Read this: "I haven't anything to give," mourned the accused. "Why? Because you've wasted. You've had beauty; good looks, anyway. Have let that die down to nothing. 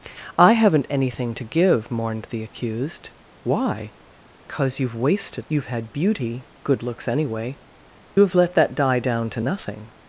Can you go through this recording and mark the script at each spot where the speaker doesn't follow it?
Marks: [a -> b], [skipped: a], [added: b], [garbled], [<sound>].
"I haven't anything to give," mourned the accused. "Why? Because [dropout] you've wasted. You've had beauty; good looks, anyway. Have let that die down to nothing.